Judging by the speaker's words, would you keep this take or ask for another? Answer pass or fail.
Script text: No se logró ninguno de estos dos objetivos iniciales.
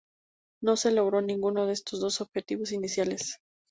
pass